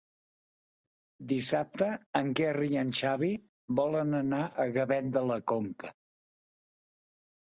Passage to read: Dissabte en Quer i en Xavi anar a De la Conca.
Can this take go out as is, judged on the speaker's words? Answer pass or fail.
fail